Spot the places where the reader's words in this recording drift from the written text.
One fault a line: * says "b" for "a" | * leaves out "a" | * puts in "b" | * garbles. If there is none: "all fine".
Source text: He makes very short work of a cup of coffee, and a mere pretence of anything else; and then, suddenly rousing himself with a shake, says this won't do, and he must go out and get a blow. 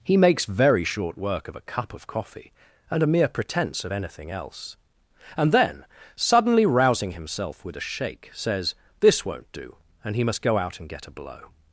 all fine